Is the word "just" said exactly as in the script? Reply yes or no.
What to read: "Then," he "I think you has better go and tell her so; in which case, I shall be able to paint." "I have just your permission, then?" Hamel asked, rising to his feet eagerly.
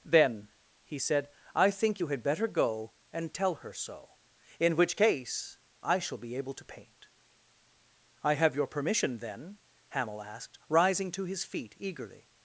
no